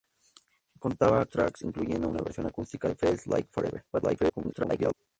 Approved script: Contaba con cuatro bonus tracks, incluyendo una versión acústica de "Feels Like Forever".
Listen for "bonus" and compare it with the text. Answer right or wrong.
wrong